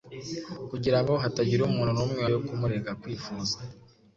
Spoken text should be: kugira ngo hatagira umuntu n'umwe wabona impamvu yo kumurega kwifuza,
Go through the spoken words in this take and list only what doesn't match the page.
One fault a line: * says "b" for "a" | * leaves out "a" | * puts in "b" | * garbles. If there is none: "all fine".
* leaves out "wabona impamvu"